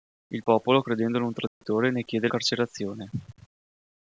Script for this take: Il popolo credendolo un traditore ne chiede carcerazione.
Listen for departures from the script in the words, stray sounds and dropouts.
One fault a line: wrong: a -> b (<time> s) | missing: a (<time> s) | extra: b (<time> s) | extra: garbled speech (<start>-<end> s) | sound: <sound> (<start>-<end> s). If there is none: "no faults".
sound: dropout (1.5-1.6 s)